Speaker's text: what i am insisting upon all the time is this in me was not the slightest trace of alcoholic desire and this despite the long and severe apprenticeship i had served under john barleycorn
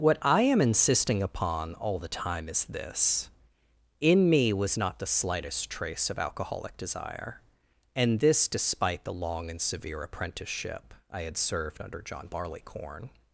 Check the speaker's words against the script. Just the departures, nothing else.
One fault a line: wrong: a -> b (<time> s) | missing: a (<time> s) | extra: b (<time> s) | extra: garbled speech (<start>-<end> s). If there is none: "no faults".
no faults